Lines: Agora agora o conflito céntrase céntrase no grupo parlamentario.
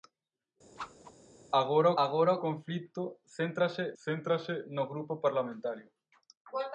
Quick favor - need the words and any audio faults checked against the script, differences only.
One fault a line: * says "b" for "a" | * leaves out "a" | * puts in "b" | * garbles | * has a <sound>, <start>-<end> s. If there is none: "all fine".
* has a whoosh, 0.8-1.2 s